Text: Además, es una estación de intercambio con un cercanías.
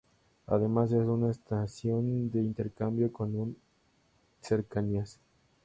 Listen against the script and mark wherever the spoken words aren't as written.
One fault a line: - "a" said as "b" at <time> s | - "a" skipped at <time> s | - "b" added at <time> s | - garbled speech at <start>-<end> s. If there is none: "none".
none